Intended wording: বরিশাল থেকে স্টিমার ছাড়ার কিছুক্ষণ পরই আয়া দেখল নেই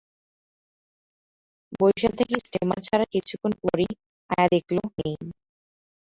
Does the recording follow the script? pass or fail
pass